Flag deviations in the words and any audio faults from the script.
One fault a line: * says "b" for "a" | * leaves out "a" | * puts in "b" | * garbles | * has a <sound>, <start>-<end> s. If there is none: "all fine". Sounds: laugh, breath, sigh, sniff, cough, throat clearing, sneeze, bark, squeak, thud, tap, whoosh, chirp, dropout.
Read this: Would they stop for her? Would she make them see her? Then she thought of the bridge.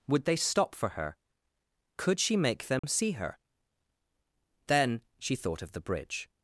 * says "Could" for "Would"
* has a dropout, 2.8-2.8 s